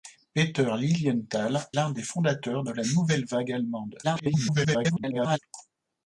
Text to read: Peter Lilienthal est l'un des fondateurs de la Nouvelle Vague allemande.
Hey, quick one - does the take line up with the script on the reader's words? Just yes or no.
no